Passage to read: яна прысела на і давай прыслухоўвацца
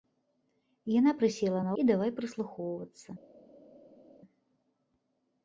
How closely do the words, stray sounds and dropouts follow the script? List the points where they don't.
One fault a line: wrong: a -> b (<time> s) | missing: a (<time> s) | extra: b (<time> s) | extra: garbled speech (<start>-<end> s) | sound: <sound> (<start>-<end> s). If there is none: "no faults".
no faults